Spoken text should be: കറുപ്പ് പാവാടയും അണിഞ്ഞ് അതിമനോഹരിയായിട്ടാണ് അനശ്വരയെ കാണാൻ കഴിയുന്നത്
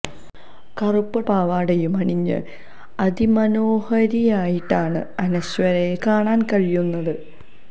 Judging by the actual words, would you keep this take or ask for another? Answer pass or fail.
pass